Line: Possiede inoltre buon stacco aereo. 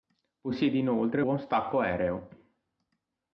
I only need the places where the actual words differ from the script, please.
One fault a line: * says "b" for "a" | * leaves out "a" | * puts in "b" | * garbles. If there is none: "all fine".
all fine